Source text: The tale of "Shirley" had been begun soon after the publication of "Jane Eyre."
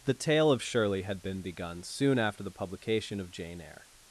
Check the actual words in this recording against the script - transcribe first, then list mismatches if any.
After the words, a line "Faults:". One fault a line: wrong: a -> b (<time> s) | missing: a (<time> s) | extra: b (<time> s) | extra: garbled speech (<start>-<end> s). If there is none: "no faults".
The tale of "Shirley" had been begun soon after the publication of "Jane Eyre."
Faults:
no faults